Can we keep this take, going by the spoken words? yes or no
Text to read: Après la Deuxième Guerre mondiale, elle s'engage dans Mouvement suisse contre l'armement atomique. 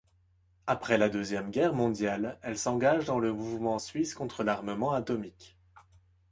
no